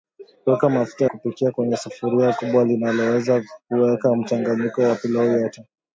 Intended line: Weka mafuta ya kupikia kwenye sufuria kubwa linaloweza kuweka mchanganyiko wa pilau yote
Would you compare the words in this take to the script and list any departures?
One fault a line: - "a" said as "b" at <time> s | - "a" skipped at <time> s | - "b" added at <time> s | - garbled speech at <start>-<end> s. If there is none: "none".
- "ya" skipped at 1.1 s